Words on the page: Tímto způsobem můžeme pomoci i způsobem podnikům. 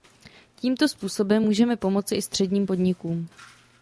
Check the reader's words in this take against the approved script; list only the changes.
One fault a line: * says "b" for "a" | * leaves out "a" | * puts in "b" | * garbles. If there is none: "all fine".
* says "středním" for "způsobem"